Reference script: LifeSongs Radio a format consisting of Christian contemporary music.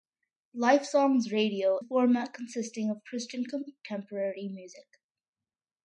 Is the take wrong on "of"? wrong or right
right